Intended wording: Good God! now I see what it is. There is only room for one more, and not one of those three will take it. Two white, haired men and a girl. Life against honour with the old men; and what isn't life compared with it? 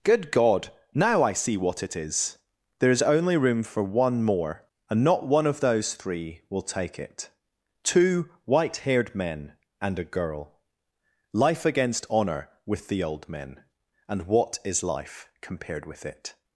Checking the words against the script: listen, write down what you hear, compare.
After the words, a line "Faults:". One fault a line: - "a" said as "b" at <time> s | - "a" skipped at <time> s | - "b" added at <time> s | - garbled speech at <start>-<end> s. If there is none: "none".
Good God! now I see what it is. There is only room for one more, and not one of those three will take it. Two white, haired men and a girl. Life against honour with the old men; and what is life compared with it?
Faults:
- "isn't" said as "is" at 14.7 s